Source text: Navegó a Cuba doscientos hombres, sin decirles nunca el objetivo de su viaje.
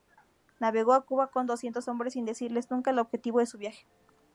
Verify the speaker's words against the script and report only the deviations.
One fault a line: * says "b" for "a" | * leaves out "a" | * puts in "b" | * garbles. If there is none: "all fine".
* puts in "con"